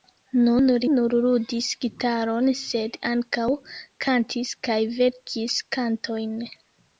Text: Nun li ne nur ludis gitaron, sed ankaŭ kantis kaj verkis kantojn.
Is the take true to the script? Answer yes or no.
no